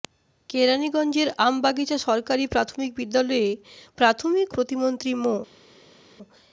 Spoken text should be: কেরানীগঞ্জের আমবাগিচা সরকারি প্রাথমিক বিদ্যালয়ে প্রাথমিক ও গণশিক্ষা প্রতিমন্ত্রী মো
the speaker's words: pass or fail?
fail